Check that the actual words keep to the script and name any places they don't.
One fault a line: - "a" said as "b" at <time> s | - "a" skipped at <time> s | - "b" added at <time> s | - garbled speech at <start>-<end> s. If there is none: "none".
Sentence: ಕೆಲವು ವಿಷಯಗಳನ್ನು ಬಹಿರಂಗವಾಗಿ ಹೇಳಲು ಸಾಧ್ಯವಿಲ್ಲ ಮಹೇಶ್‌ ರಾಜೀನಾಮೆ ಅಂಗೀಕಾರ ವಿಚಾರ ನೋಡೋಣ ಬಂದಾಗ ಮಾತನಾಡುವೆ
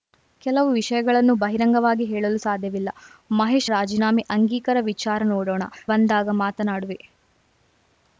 none